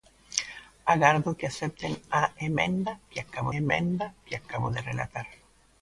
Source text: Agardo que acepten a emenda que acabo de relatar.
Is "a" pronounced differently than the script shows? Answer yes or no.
no